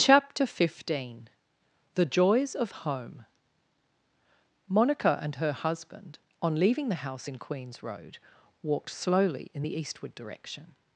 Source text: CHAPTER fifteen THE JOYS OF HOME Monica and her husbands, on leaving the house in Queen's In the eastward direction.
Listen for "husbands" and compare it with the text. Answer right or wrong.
wrong